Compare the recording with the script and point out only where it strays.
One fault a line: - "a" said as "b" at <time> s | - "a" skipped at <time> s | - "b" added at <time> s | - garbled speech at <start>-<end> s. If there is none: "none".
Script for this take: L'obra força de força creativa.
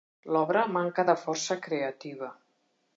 - "força" said as "manca" at 0.8 s